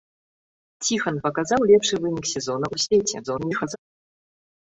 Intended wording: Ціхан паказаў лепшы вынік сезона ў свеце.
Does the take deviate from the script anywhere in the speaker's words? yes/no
yes